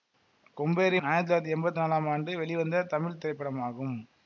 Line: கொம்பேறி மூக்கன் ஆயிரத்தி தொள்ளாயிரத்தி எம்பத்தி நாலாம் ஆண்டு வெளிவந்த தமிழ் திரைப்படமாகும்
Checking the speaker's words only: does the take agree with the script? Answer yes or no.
no